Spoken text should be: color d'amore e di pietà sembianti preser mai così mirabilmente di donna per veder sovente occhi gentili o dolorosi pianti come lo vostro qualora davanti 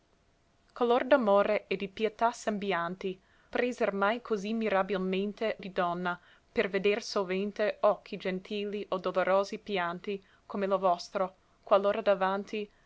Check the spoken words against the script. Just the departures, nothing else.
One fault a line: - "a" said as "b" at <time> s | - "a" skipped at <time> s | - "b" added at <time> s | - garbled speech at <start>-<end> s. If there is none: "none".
none